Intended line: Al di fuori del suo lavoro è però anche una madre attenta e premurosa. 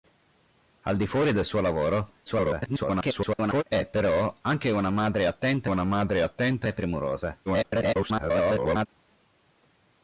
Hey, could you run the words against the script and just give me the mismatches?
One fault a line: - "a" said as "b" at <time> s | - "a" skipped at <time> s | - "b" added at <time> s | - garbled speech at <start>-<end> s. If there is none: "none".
- garbled speech at 2.3-3.6 s
- "una madre attenta" added at 5.6 s
- garbled speech at 7.5-8.9 s